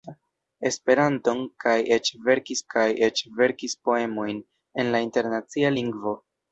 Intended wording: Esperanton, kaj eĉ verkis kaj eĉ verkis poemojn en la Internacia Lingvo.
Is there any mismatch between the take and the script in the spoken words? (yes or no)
no